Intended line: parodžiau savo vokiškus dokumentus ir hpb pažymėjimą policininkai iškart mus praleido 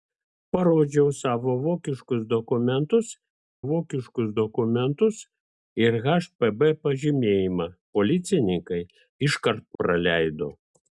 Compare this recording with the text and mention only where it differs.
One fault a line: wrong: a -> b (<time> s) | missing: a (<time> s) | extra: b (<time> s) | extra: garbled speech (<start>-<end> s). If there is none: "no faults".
extra: vokiškus dokumentus (3.7 s)
missing: mus (9.7 s)